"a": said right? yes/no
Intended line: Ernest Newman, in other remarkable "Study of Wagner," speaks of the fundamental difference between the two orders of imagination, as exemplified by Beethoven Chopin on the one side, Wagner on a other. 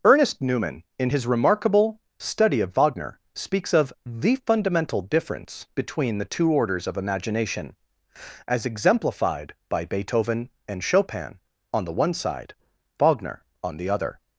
no